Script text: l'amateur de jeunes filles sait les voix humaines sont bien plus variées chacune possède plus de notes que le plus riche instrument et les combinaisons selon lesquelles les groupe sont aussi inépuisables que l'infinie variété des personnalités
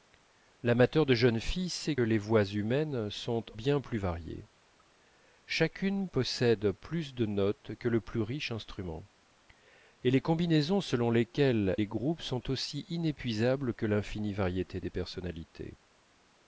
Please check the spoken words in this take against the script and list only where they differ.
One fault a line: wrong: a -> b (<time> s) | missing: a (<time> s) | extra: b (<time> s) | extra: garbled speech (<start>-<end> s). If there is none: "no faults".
no faults